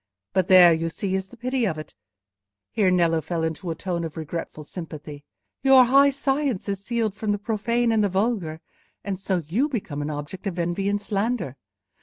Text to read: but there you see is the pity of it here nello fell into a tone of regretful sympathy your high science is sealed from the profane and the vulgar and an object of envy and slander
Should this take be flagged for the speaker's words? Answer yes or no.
yes